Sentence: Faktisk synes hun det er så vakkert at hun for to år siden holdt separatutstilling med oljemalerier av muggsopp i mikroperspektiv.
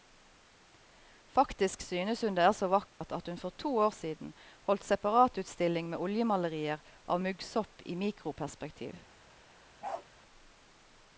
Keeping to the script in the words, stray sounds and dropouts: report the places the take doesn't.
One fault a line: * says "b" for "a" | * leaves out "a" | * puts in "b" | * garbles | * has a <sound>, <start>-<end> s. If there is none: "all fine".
* has a dropout, 2.9-3.0 s
* has a bark, 9.8-10.1 s